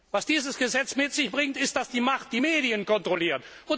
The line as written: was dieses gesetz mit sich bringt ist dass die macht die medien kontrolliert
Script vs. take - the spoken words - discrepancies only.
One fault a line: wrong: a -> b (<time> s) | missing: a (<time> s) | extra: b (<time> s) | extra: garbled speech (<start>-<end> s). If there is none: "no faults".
no faults